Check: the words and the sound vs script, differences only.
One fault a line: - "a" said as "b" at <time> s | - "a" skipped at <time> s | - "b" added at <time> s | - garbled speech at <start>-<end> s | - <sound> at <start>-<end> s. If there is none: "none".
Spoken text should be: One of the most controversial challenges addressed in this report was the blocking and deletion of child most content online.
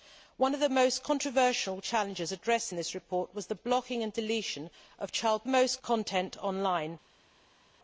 none